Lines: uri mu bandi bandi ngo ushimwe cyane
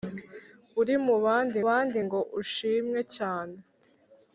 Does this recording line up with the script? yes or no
yes